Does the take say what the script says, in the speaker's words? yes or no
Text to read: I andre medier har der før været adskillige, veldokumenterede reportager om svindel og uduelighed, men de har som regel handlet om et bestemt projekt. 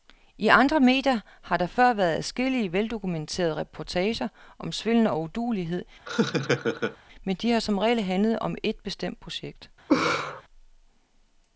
yes